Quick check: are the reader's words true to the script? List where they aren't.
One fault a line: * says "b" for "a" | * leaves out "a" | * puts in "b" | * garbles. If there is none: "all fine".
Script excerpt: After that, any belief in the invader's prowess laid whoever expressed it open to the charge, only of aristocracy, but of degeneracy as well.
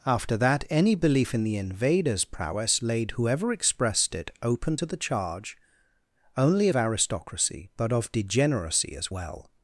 all fine